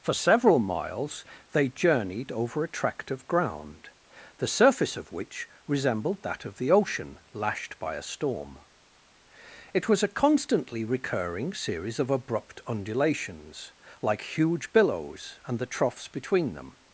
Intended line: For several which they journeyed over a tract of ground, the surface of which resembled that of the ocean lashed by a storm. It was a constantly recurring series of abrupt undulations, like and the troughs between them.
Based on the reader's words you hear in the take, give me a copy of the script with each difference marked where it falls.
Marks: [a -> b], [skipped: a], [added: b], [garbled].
For several [which -> miles] they journeyed over a tract of ground, the surface of which resembled that of the ocean lashed by a storm. It was a constantly recurring series of abrupt undulations, like [added: huge billows] and the troughs between them.